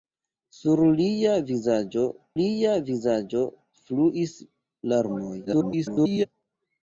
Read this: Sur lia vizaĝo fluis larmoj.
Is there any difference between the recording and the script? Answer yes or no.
yes